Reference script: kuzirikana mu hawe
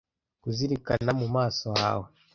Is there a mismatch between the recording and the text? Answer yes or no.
yes